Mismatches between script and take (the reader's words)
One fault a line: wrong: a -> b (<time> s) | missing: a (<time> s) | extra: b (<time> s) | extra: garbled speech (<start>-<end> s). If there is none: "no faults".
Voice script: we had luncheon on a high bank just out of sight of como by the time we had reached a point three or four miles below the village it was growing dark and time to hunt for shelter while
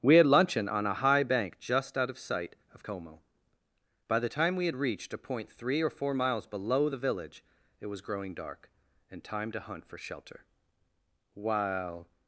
no faults